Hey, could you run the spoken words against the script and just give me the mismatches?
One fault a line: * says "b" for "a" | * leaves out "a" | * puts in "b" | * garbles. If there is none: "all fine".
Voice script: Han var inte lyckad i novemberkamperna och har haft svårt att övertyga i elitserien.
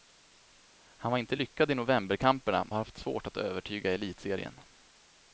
* leaves out "och"